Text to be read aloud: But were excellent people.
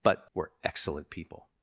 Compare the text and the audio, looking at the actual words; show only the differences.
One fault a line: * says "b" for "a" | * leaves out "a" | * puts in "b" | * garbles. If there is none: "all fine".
all fine